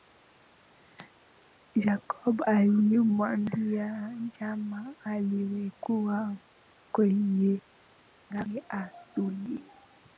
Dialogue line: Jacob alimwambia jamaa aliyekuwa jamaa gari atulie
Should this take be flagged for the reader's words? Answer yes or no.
yes